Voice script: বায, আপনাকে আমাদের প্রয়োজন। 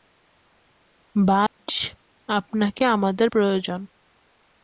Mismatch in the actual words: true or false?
false